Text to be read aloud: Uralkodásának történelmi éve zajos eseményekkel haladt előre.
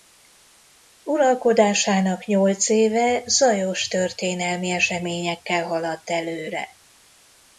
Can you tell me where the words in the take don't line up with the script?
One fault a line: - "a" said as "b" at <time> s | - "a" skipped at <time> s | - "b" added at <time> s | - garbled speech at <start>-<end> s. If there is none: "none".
- "történelmi" said as "nyolc" at 2.2 s
- "történelmi" added at 3.9 s